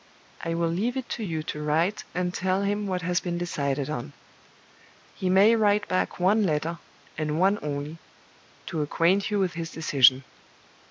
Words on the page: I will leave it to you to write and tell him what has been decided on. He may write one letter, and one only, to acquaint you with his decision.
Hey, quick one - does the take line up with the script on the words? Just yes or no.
no